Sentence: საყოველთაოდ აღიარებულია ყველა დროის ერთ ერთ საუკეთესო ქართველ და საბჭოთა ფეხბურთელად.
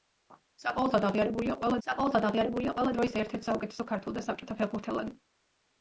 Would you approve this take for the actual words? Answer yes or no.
no